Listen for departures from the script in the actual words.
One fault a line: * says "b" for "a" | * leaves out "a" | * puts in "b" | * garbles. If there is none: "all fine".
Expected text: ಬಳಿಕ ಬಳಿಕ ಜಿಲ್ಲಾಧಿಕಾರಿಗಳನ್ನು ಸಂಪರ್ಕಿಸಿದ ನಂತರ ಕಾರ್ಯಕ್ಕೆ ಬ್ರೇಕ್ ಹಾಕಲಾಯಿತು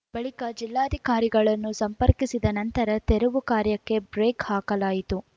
* leaves out "ಬಳಿಕ"
* puts in "ತೆರವು"